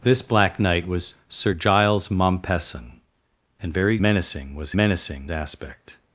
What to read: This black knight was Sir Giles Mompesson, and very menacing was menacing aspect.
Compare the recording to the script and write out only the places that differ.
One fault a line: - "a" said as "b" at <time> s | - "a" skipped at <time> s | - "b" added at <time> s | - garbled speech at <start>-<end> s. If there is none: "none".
none